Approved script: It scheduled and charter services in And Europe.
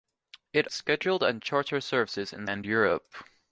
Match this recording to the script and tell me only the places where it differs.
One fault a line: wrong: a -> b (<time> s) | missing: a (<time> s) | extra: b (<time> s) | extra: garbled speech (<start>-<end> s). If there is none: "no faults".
no faults